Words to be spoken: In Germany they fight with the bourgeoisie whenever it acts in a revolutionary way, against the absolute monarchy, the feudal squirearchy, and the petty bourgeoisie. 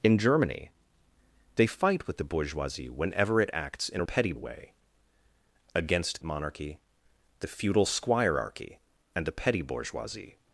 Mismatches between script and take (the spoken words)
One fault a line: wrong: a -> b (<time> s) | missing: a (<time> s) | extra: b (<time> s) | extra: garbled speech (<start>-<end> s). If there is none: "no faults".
wrong: revolutionary -> petty (4.0 s)
missing: the absolute (6.2 s)